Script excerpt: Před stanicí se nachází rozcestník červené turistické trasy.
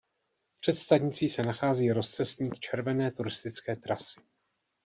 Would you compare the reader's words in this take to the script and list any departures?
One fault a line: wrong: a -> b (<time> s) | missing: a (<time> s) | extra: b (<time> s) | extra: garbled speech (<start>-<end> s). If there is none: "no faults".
no faults